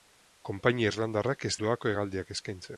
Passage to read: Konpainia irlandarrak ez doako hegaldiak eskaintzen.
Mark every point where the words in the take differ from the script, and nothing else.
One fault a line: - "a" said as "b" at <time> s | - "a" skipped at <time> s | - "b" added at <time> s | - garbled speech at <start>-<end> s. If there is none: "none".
none